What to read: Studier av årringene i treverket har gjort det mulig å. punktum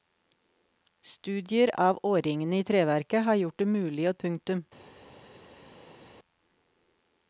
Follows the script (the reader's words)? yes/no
yes